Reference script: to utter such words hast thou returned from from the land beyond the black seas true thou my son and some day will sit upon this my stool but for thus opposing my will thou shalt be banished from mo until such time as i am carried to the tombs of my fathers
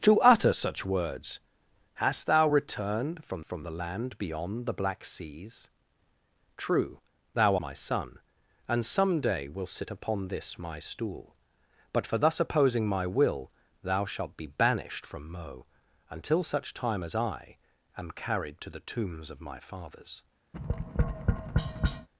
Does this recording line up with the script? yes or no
yes